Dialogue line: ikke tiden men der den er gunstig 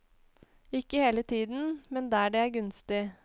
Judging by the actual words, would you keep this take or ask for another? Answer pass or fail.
fail